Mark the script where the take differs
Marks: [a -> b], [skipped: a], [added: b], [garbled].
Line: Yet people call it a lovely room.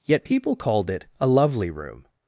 Yet people [call -> called] it a lovely room.